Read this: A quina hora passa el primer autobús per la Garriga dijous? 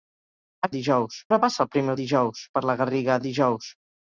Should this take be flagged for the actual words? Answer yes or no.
yes